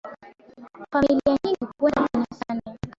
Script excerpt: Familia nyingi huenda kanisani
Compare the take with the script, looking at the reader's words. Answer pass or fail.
pass